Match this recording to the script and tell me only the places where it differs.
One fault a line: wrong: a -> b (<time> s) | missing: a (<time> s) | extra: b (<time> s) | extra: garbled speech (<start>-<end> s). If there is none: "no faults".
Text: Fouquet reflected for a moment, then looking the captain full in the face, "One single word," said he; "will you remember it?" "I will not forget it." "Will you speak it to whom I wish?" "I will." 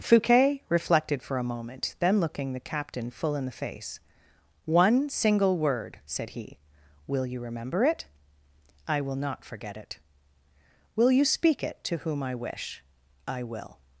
no faults